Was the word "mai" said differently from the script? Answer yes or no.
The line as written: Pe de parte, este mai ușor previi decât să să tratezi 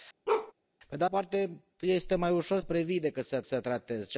no